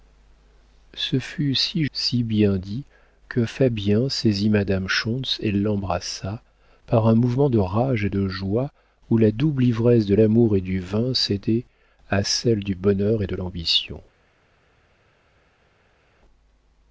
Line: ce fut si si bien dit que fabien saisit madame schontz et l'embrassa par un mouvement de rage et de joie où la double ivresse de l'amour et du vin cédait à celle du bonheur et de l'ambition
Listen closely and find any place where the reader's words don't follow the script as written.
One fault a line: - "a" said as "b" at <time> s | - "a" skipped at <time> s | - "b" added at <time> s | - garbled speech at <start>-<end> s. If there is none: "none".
none